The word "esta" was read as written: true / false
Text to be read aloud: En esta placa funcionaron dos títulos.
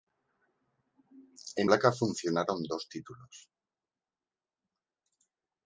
false